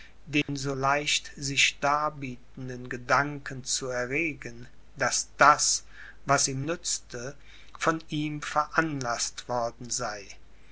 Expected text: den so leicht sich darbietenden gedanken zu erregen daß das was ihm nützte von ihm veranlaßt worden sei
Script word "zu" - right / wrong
right